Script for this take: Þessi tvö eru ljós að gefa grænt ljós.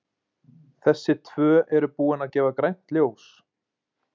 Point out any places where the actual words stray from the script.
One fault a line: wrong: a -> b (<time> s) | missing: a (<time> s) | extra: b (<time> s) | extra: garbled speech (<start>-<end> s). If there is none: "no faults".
wrong: ljós -> búin (2.0 s)